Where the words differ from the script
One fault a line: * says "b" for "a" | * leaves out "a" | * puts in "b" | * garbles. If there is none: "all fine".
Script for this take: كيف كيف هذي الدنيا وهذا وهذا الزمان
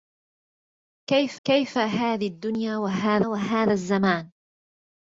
all fine